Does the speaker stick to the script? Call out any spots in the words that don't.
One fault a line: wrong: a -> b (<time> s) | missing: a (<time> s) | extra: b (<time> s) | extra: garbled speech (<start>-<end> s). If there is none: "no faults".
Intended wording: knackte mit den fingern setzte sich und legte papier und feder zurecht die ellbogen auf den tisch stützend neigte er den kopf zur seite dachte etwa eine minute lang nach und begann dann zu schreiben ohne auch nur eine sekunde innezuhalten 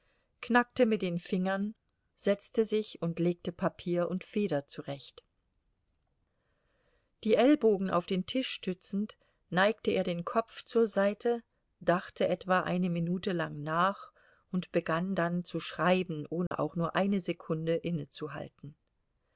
no faults